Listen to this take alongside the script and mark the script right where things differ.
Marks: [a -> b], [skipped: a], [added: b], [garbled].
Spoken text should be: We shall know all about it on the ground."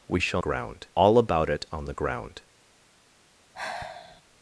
We shall [know -> ground] all about it on the ground."